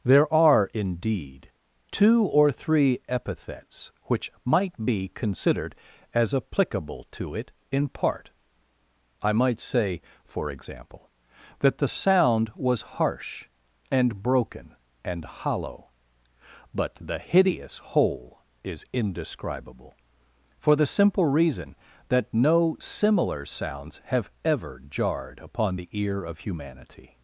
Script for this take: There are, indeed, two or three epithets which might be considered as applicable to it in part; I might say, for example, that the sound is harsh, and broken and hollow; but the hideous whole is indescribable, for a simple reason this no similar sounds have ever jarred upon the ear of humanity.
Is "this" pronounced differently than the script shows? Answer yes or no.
yes